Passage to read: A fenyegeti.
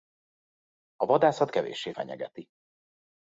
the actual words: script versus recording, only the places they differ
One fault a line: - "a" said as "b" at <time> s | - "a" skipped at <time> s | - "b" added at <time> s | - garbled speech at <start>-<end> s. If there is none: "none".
- "vadászat kevéssé" added at 1.1 s